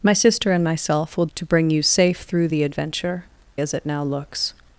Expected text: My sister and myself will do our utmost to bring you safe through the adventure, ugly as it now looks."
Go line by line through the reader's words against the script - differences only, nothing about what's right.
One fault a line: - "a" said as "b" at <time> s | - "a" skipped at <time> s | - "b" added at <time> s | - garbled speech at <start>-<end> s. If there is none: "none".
- "do our utmost" skipped at 1.3 s
- "ugly" skipped at 3.2 s